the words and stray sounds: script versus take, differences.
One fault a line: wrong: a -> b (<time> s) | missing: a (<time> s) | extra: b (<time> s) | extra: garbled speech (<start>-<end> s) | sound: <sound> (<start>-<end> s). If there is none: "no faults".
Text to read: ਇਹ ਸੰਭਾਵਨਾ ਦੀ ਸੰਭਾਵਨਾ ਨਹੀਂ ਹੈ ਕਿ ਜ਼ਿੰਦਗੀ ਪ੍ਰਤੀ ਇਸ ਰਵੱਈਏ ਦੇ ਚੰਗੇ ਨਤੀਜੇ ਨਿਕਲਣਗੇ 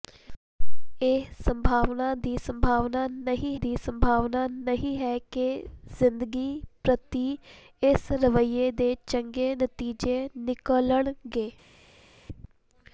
extra: ਦੀ ਸੰਭਾਵਨਾ ਨਹੀਂ (3.6 s)